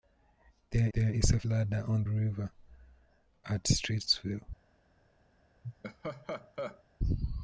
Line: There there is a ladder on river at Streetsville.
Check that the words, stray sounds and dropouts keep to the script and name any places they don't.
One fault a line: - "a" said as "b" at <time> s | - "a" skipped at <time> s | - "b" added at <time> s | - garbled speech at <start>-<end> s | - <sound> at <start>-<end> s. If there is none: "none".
- laugh at 5.6-6.8 s